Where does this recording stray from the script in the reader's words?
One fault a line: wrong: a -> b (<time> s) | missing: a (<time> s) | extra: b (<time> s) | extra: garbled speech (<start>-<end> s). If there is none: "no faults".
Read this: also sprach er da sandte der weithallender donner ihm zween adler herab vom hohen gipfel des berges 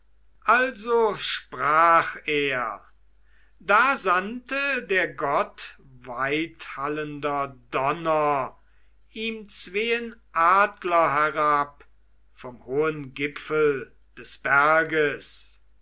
extra: gott (5.1 s)